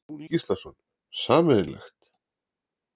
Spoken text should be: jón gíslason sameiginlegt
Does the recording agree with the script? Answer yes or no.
yes